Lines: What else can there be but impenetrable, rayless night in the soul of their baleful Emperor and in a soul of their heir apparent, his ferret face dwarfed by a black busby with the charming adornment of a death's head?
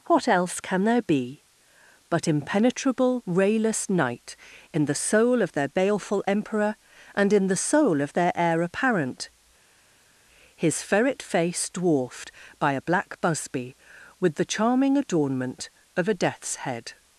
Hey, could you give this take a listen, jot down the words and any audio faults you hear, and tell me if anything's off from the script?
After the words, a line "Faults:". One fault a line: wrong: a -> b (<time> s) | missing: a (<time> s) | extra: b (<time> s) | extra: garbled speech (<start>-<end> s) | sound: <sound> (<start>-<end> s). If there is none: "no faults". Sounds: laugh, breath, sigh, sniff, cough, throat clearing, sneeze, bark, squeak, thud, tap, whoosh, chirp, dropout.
What else can there be but impenetrable, rayless night in the soul of their baleful Emperor and in the soul of their heir apparent, his ferret face dwarfed by a black busby with the charming adornment of a death's head?
Faults:
wrong: a -> the (7.5 s)